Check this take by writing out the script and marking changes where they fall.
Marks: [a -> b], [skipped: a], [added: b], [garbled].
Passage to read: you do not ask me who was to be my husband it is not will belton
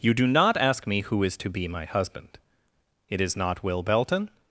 you do not ask me who [was -> is] to be my husband it is not will belton